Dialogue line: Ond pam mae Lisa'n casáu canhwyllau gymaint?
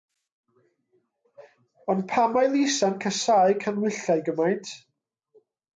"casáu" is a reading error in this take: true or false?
false